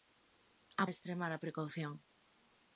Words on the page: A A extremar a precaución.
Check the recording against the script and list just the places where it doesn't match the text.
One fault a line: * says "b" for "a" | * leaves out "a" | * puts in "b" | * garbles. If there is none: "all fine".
all fine